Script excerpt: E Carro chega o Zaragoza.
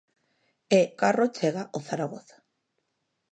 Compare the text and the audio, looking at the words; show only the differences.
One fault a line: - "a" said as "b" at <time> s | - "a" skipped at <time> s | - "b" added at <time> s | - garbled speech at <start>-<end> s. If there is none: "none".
none